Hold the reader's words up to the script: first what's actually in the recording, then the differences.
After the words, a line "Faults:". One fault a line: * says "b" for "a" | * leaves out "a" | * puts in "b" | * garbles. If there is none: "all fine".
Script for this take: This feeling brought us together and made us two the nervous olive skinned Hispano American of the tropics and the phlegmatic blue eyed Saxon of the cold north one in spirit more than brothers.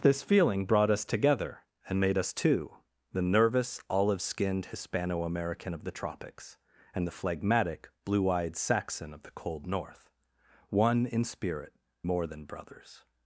This feeling brought us together and made us two the nervous olive skinned Hispano American of the tropics and the phlegmatic blue eyed Saxon of the cold north one in spirit more than brothers.
Faults:
all fine